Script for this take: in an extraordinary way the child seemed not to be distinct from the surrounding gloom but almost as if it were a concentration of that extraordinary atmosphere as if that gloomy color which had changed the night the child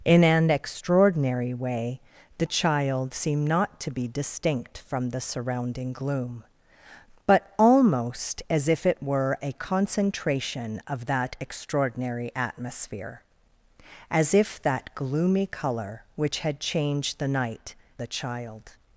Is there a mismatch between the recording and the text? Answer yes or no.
no